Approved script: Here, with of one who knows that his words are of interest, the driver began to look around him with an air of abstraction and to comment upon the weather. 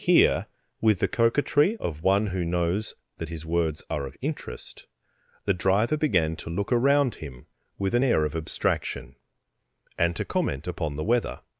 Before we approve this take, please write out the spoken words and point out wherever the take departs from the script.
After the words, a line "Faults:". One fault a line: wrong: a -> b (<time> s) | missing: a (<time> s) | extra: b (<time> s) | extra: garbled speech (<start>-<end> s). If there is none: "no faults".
Here, with the coquetry of one who knows that his words are of interest, the driver began to look around him with an air of abstraction and to comment upon the weather.
Faults:
extra: the coquetry (1.0 s)